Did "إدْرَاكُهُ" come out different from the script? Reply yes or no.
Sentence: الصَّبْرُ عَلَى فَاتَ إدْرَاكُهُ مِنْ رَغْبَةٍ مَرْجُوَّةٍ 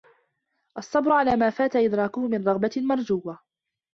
no